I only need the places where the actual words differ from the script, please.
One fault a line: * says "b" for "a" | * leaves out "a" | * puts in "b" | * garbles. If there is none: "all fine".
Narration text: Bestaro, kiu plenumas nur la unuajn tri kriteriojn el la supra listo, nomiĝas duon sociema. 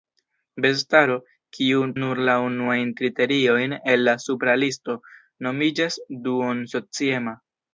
* leaves out "plenumas"
* leaves out "tri"